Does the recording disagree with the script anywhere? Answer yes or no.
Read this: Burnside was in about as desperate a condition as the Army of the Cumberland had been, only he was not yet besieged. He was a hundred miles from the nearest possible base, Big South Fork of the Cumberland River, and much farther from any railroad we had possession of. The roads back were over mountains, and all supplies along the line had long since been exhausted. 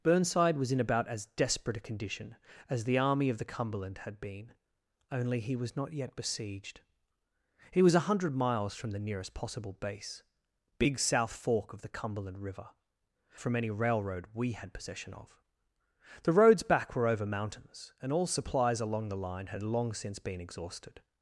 yes